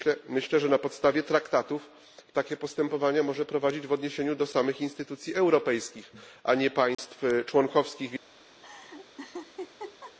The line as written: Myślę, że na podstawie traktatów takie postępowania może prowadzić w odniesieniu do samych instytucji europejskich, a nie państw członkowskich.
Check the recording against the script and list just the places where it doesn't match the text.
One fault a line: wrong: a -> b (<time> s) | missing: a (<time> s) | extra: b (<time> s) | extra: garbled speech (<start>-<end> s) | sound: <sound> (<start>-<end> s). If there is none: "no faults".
sound: dropout (6.9-7.0 s)
sound: laugh (8.6-10.2 s)